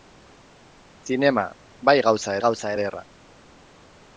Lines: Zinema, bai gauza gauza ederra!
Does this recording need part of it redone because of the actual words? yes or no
no